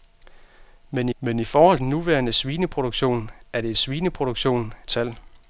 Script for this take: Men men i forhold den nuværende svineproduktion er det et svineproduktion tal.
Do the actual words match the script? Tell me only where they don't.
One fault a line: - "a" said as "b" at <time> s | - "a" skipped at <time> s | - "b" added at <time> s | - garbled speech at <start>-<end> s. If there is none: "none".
none